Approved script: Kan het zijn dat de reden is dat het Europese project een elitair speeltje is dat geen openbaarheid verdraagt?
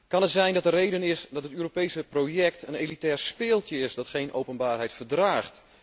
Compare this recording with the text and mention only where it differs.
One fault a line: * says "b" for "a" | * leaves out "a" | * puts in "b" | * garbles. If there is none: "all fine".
all fine